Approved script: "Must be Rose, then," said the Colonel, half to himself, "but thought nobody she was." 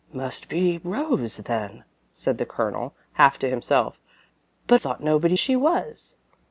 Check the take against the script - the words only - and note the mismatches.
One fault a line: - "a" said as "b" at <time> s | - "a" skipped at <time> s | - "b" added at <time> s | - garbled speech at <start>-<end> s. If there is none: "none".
none